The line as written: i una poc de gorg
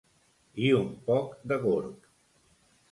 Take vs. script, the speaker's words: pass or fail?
fail